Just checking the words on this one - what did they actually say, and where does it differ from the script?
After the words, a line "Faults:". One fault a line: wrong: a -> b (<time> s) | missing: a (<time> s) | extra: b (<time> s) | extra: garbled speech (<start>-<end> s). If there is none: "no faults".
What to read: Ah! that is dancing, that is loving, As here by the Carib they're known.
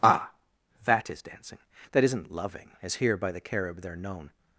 Ah! that is dancing, that isn't loving, As here by the Carib they're known.
Faults:
wrong: is -> isn't (2.0 s)